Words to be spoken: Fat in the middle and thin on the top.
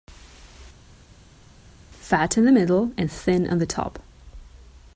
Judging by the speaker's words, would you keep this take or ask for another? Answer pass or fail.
pass